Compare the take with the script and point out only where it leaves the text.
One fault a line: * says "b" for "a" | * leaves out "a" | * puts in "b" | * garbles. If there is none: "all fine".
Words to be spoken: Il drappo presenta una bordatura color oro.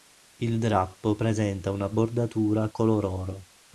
all fine